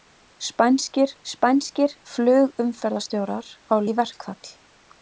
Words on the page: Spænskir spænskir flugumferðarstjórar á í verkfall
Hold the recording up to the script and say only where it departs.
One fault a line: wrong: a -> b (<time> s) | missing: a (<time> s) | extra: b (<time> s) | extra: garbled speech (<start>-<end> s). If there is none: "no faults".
no faults